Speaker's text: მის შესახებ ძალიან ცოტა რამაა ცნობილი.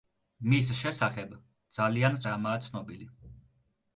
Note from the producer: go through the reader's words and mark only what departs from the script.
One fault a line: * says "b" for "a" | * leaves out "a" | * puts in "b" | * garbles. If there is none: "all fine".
* leaves out "ცოტა"